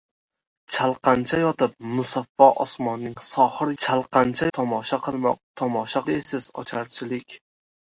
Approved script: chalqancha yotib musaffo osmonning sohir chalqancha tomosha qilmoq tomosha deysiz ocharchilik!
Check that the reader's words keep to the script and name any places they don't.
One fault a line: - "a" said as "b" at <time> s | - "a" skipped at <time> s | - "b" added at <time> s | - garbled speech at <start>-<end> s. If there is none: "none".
none